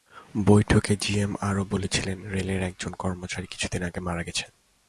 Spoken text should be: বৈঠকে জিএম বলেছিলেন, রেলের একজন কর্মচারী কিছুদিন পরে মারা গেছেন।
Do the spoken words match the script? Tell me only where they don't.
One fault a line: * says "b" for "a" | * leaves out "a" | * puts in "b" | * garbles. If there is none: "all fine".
* puts in "আরও"
* says "আগে" for "পরে"